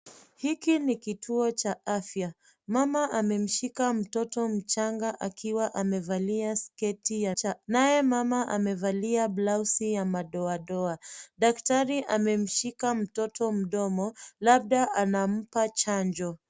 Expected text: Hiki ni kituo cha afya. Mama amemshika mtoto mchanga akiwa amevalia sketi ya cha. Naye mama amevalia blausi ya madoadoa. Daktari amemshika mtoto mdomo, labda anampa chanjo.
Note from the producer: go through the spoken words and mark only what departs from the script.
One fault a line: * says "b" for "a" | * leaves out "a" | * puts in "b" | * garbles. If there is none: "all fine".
all fine